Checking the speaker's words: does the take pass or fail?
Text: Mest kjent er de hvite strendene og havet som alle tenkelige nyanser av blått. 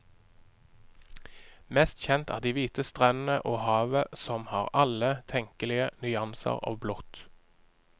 fail